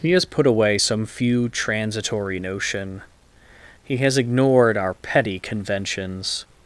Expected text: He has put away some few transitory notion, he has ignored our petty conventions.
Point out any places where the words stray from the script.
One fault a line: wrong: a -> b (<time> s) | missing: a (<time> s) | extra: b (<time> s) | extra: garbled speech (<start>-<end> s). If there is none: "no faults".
no faults